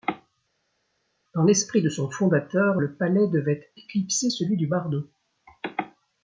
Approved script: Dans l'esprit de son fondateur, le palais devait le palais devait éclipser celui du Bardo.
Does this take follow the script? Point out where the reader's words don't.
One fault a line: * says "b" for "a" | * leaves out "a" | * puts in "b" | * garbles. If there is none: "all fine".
* leaves out "le palais devait"